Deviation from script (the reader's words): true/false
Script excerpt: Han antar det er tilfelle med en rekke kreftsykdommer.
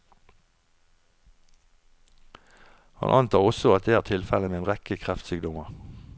true